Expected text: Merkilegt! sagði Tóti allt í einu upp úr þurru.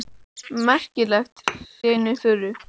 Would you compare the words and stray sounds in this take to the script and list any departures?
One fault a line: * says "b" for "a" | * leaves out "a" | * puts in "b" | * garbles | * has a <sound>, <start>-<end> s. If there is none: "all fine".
* leaves out "sagði Tóti allt"
* has a thud, 1.5-1.7 s
* leaves out "upp"